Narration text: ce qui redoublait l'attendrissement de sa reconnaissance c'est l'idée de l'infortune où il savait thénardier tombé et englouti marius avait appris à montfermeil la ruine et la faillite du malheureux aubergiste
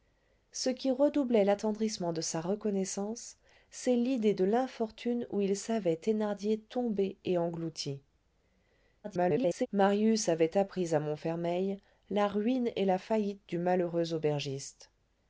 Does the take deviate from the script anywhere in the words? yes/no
yes